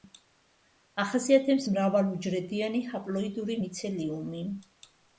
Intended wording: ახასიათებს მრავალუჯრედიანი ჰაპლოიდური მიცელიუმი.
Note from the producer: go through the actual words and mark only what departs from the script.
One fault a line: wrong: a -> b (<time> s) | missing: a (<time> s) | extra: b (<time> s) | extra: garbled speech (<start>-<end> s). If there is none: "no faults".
no faults